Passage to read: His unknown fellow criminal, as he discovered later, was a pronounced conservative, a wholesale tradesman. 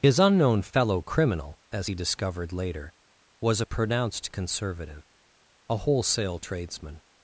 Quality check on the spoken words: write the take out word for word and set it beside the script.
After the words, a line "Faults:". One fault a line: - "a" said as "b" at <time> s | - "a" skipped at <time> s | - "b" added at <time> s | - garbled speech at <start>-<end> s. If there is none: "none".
His unknown fellow criminal, as he discovered later, was a pronounced conservative, a wholesale tradesman.
Faults:
none